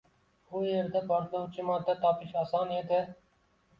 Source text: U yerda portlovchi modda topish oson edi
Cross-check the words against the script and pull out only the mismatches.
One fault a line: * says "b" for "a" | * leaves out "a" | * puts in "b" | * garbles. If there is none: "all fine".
all fine